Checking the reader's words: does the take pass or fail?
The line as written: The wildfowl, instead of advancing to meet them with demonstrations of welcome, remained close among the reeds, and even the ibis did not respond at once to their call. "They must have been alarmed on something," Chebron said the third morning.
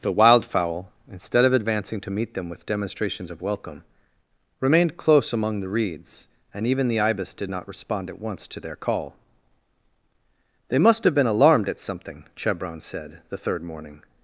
fail